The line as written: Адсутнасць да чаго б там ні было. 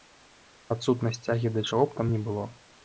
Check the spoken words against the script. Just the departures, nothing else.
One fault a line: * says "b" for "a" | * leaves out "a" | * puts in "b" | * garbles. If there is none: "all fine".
* puts in "цягі"